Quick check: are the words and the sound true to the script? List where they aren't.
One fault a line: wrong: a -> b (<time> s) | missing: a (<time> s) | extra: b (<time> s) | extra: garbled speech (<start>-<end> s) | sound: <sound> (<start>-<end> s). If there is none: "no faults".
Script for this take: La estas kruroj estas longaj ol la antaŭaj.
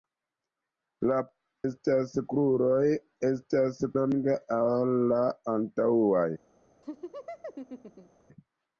sound: laugh (6.8-8.2 s)